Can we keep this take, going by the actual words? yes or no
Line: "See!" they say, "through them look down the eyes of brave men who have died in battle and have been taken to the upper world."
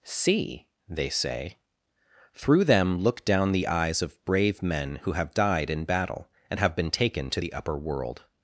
yes